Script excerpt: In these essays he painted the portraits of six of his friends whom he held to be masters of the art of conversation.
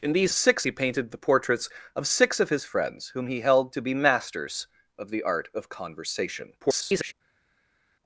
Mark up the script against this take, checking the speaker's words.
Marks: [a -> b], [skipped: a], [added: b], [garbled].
In these [essays -> six] he painted the portraits of six of his friends whom he held to be masters of the art of conversation. [garbled]